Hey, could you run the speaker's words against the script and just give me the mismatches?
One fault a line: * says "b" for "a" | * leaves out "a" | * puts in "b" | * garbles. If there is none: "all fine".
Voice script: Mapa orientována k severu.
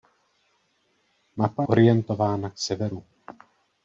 all fine